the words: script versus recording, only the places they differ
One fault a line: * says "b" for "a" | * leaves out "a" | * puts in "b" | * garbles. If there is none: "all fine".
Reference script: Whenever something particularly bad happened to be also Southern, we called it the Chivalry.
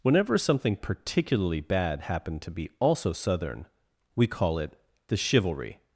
* says "call" for "called"